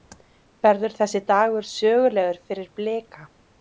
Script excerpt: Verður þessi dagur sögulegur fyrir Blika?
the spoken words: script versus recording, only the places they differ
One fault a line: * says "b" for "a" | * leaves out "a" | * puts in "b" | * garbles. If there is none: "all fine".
all fine